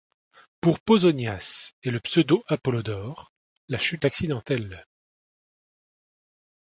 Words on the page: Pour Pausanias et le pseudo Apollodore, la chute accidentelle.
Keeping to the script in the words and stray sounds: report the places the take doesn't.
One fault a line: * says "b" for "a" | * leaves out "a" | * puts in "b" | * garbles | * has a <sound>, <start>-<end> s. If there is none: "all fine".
all fine